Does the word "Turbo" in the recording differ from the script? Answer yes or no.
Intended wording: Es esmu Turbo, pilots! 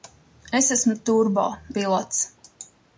no